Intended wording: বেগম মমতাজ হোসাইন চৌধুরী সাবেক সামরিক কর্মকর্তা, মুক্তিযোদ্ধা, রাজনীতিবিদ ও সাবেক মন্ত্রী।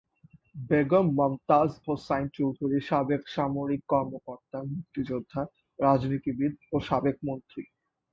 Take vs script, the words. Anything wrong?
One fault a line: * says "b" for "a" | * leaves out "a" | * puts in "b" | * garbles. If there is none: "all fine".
all fine